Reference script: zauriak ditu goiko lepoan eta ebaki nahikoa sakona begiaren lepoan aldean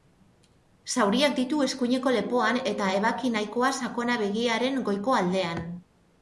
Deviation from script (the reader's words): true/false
true